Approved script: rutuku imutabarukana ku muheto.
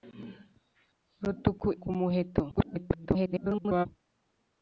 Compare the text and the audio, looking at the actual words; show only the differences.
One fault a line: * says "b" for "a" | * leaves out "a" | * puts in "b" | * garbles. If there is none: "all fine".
* leaves out "imutabarukana"
* garbles